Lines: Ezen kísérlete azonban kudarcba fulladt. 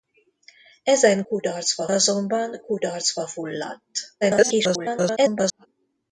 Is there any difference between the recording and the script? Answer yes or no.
yes